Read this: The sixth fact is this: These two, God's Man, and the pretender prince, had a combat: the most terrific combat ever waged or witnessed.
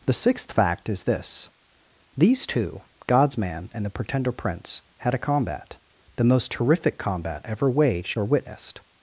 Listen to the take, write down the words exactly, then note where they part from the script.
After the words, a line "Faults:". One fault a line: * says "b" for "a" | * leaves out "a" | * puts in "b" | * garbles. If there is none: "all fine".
The sixth fact is this: These two, God's Man, and the pretender prince, had a combat: the most terrific combat ever waged or witnessed.
Faults:
all fine